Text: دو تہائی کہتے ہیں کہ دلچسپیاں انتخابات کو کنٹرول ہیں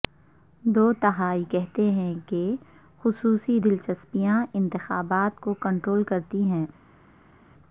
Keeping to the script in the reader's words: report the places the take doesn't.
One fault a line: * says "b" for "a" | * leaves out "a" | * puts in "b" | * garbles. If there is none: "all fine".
* puts in "خصوصی"
* puts in "کرتی"